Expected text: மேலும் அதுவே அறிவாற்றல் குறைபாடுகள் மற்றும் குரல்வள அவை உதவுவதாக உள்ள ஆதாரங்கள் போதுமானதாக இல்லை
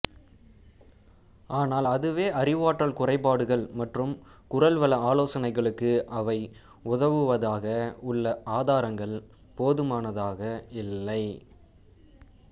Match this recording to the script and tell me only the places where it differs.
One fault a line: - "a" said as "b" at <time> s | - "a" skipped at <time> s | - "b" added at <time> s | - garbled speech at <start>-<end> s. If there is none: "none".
- "மேலும்" said as "ஆனால்" at 1.5 s
- "ஆலோசனைகளுக்கு" added at 5.1 s